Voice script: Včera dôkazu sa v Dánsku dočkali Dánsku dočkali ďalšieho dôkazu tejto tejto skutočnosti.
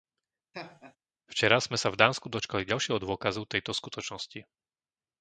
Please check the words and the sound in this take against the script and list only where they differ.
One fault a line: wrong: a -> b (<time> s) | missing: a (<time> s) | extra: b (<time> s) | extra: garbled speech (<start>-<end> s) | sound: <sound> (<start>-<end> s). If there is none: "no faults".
sound: laugh (0.5-1.0 s)
wrong: dôkazu -> sme (1.6 s)
missing: Dánsku dočkali (2.6 s)
missing: tejto (3.8 s)